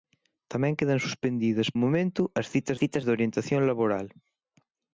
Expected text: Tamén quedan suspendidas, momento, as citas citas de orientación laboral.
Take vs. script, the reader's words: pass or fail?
pass